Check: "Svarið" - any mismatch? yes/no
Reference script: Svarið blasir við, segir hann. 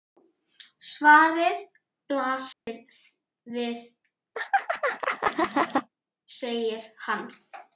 no